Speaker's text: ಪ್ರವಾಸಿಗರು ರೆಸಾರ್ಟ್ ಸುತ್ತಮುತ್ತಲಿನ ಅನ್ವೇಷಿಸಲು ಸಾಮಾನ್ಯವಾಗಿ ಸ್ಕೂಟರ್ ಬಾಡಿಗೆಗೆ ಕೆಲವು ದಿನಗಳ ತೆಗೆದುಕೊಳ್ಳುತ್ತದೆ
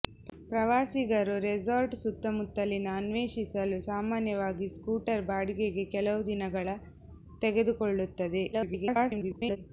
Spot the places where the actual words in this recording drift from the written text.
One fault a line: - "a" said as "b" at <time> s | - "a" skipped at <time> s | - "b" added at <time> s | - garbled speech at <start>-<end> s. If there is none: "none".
- garbled speech at 8.5-9.6 s